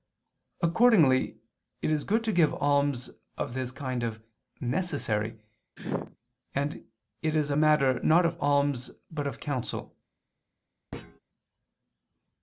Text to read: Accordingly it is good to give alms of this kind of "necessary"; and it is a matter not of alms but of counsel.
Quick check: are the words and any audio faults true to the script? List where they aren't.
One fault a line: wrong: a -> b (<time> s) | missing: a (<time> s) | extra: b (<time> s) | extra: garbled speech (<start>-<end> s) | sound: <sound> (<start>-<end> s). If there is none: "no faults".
sound: sneeze (5.8-6.2 s)
sound: thud (10.9-11.2 s)